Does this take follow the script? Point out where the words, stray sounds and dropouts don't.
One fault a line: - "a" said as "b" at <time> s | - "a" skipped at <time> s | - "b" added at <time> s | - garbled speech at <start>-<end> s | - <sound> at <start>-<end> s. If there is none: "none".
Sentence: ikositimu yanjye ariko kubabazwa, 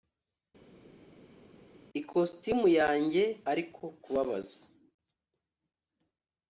none